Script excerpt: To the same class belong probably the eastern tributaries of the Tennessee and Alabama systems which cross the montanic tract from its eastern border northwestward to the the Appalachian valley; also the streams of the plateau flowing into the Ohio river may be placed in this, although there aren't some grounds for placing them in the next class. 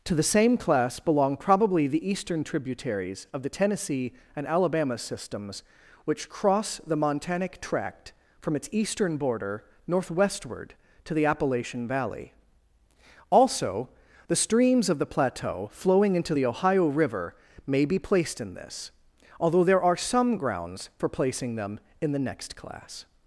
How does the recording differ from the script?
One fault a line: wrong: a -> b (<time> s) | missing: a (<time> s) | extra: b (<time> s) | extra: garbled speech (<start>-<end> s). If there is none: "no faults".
missing: the (11.3 s)
wrong: aren't -> are (19.8 s)